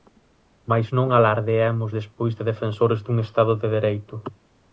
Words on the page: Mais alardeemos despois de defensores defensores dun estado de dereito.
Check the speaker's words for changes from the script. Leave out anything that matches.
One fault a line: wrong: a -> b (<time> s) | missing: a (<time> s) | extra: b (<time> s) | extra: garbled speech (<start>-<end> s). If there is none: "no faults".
extra: non (1.0 s)
missing: defensores (3.0 s)